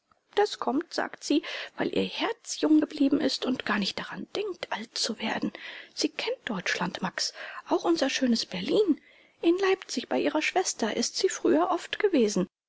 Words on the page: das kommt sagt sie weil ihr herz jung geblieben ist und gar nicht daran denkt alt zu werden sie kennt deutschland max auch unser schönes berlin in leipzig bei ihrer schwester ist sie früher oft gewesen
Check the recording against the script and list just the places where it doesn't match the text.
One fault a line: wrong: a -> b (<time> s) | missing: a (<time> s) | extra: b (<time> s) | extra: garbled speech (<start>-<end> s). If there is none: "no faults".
no faults